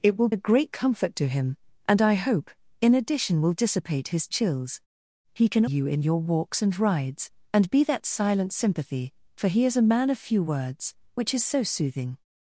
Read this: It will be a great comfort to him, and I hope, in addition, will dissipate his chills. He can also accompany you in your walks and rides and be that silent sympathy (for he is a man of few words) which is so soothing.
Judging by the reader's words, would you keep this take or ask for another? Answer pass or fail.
fail